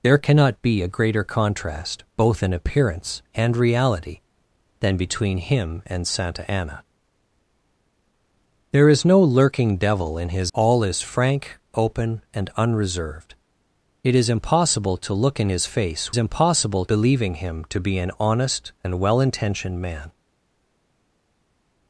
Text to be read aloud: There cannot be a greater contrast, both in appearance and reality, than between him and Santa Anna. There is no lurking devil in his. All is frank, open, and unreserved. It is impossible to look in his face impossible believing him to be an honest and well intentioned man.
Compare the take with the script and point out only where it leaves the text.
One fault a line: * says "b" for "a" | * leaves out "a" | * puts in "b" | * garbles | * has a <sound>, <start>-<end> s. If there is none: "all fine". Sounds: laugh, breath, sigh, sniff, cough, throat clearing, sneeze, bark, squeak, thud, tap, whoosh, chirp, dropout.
all fine